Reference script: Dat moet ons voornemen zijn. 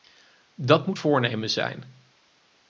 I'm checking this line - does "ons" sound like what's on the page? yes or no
no